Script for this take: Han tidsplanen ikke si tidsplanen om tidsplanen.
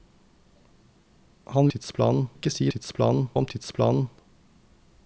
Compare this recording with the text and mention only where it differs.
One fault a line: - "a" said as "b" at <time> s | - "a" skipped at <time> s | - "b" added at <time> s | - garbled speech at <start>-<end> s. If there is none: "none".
none